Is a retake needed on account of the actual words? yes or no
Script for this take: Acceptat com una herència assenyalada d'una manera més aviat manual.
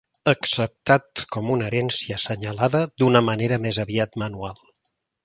no